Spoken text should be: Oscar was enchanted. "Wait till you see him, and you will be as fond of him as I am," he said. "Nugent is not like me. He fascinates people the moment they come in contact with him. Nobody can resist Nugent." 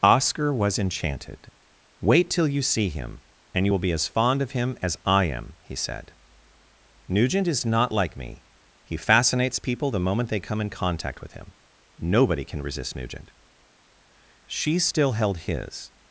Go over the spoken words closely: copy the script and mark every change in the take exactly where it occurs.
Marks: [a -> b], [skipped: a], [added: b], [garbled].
Oscar was enchanted. "Wait till you see him, and you will be as fond of him as I am," he said. "Nugent is not like me. He fascinates people the moment they come in contact with him. Nobody can resist Nugent." [added: She still held his]